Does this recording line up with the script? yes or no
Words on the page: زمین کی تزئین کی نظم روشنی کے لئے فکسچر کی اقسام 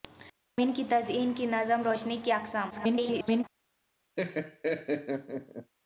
no